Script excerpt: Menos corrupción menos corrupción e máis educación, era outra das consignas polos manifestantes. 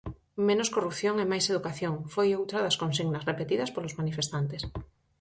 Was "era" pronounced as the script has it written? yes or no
no